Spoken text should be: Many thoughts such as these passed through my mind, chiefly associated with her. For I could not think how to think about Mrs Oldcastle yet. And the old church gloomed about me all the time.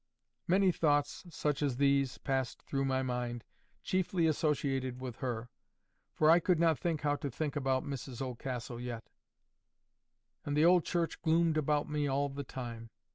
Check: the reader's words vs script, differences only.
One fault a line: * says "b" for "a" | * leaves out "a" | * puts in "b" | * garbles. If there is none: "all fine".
all fine